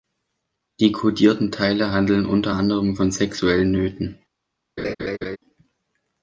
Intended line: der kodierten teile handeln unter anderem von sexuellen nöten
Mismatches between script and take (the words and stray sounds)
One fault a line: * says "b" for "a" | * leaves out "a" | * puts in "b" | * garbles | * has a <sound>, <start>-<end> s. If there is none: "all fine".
* says "die" for "der"
* has a laugh, 4.8-5.4 s